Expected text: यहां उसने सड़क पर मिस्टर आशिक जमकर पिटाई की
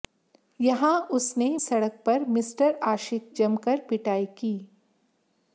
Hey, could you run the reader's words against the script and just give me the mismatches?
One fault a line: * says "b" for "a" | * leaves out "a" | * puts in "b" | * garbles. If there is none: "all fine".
all fine